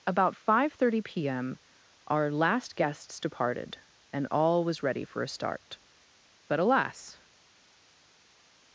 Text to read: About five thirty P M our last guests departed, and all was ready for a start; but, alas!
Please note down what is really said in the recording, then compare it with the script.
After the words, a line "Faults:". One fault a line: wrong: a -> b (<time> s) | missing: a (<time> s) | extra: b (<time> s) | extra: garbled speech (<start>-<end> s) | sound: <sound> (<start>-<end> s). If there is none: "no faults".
About five thirty P M our last guests departed, and all was ready for a start; but, alas!
Faults:
no faults